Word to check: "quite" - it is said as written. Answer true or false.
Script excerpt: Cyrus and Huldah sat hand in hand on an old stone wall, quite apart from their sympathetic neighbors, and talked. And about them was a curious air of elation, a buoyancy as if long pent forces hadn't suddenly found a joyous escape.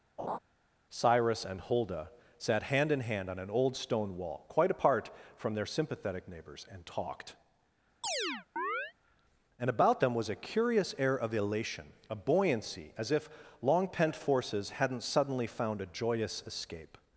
true